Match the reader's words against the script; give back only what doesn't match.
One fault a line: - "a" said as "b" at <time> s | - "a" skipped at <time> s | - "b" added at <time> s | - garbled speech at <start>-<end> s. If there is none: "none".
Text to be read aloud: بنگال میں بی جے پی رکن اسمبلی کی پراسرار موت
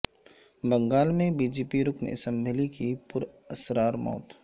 none